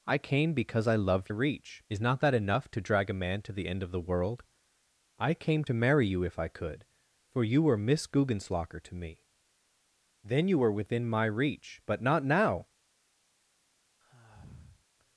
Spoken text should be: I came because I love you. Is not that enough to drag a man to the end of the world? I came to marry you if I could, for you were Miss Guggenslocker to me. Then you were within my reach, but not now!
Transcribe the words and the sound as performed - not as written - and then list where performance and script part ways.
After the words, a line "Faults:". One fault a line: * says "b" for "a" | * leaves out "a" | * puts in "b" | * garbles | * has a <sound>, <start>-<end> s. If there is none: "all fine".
I came because I love reach. Is not that enough to drag a man to the end of the world? I came to marry you if I could, for you were Miss Guggenslocker to me. Then you were within my reach, but not now!
Faults:
* says "reach" for "you"
* has a sigh, 14.0-14.9 s